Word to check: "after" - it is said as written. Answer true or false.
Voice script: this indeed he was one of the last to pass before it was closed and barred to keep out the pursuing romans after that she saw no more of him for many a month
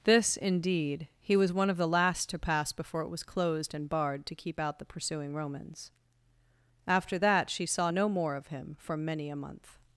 true